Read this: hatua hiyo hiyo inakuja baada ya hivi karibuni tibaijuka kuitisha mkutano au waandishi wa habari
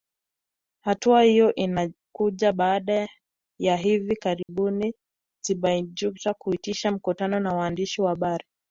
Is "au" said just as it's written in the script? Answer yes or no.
no